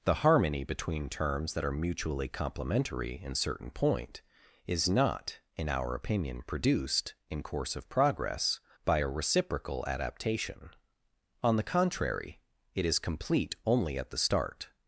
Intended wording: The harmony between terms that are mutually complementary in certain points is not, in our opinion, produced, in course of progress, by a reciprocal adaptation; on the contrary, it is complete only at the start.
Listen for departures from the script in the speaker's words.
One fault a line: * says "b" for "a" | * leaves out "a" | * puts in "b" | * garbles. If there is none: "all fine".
* says "point" for "points"